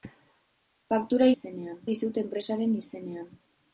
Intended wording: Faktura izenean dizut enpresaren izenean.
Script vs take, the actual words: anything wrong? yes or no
no